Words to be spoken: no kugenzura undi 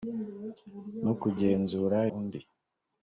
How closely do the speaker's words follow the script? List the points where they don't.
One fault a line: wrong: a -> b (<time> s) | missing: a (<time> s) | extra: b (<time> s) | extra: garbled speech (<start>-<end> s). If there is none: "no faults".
no faults